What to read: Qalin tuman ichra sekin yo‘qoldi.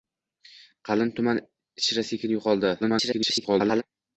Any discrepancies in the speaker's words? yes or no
yes